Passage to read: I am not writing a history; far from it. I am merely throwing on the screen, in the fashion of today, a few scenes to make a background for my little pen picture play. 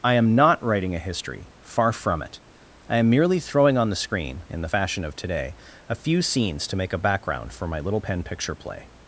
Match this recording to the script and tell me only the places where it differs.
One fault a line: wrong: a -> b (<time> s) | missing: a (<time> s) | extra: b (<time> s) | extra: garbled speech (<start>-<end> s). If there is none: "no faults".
no faults